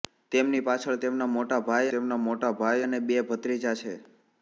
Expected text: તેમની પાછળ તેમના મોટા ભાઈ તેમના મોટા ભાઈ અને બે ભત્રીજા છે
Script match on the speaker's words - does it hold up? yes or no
yes